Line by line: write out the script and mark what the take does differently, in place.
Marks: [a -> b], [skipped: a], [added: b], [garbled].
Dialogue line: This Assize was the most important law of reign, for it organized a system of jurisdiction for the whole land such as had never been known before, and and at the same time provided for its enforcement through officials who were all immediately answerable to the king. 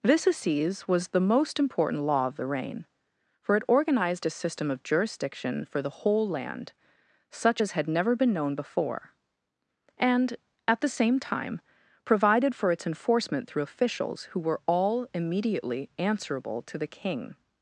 This Assize was the most important law of [added: the] reign, for it organized a system of jurisdiction for the whole land such as had never been known before, and [skipped: and] at the same time provided for its enforcement through officials who were all immediately answerable to the king.